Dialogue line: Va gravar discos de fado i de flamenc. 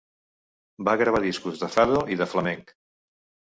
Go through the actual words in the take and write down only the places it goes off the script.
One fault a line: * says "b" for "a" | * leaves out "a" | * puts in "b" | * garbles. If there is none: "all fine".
all fine